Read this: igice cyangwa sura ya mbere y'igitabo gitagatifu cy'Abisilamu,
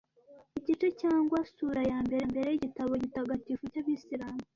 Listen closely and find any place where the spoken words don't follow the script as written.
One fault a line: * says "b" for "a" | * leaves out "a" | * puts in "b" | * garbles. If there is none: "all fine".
* puts in "mbere"